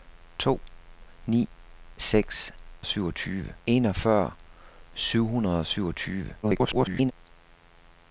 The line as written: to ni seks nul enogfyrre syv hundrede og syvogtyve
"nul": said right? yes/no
no